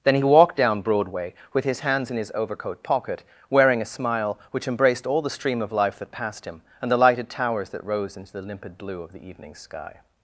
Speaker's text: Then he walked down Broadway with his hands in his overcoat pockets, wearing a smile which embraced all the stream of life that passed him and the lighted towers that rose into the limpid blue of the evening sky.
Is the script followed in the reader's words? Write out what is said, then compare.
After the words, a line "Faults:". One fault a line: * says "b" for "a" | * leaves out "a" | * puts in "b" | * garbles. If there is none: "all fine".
Then he walked down Broadway with his hands in his overcoat pocket, wearing a smile which embraced all the stream of life that passed him and the lighted towers that rose into the limpid blue of the evening sky.
Faults:
* says "pocket" for "pockets"